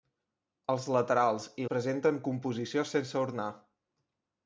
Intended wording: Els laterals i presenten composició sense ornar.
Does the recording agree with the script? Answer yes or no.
yes